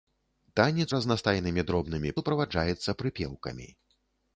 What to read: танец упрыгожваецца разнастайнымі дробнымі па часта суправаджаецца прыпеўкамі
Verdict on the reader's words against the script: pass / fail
fail